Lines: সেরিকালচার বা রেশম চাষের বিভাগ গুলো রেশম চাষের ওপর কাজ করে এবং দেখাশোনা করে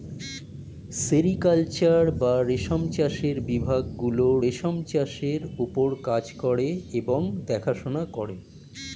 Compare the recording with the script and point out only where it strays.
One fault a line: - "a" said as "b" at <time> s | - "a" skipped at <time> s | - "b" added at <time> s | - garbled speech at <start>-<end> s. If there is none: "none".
none